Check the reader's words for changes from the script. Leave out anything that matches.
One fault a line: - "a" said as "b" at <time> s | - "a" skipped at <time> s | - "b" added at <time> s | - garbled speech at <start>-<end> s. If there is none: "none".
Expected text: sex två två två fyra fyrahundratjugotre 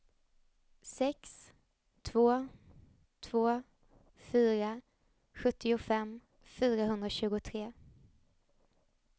- "två fyra" said as "fyra sjuttiofem" at 4.1 s